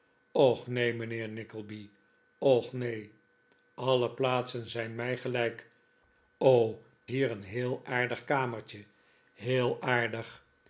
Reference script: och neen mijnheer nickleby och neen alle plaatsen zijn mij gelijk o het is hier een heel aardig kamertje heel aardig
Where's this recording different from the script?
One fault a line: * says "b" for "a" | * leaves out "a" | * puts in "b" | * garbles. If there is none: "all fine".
* leaves out "het is"